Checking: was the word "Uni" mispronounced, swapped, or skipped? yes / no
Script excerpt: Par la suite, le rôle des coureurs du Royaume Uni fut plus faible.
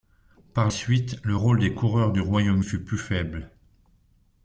yes